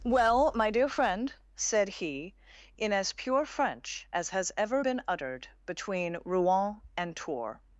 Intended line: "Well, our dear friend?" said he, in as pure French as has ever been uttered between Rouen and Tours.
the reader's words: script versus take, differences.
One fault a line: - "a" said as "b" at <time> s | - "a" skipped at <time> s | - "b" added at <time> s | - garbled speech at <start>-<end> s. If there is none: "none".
- "our" said as "my" at 0.6 s